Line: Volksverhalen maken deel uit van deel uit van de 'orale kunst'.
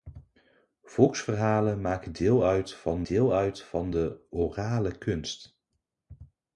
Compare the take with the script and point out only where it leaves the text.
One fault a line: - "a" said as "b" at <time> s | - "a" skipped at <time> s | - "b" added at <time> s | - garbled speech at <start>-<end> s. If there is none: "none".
none